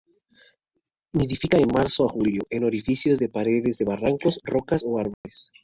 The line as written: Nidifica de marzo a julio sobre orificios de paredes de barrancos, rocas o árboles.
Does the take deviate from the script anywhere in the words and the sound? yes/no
yes